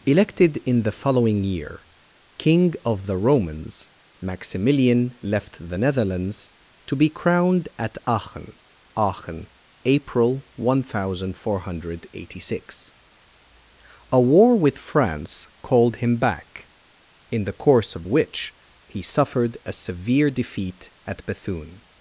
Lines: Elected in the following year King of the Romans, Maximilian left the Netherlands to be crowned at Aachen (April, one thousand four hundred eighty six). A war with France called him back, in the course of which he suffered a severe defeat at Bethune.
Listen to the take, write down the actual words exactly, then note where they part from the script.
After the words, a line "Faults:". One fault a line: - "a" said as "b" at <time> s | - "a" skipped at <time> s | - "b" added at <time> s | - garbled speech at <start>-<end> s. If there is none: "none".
Elected in the following year King of the Romans, Maximilian left the Netherlands to be crowned at Aachen Aachen (April, one thousand four hundred eighty six). A war with France called him back, in the course of which he suffered a severe defeat at Bethune.
Faults:
- "Aachen" added at 8.9 s